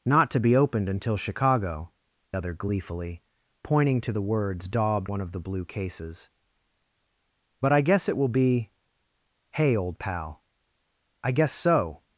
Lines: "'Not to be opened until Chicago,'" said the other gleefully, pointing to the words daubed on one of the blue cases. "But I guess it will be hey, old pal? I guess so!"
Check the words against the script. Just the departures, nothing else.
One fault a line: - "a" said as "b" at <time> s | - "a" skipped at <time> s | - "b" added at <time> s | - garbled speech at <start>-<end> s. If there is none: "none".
- "said the" skipped at 1.9 s
- "on" skipped at 5.1 s